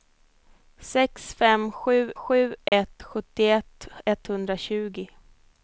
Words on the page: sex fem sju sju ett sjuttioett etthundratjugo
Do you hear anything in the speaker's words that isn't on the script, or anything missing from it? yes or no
no